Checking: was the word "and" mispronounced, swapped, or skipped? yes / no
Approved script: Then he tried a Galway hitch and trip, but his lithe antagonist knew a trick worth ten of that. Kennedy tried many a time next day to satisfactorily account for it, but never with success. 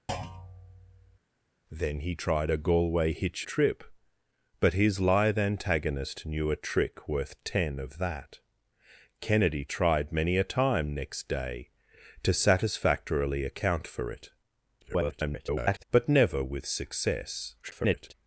yes